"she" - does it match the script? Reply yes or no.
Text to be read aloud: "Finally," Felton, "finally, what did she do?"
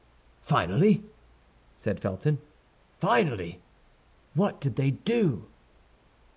no